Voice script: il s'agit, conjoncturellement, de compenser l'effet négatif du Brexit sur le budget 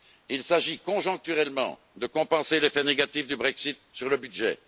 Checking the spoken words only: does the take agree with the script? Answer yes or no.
yes